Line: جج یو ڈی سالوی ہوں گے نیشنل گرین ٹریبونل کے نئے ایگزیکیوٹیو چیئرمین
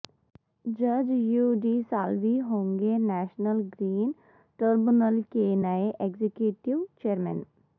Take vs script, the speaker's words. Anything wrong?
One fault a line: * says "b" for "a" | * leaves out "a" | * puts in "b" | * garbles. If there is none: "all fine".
all fine